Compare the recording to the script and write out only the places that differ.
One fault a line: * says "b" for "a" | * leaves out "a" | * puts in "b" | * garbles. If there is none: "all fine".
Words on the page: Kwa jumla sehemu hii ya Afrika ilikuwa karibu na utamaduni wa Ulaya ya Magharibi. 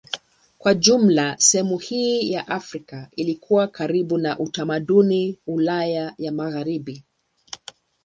* leaves out "wa"